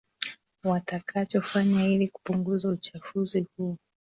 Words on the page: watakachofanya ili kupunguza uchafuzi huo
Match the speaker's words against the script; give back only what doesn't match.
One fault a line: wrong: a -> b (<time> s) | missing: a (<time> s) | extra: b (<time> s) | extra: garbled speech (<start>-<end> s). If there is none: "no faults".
no faults